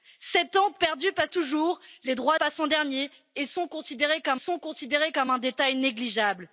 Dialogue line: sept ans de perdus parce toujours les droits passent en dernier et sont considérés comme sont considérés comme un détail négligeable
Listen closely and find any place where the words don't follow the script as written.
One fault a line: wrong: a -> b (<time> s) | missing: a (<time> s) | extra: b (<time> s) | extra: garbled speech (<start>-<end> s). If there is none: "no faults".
no faults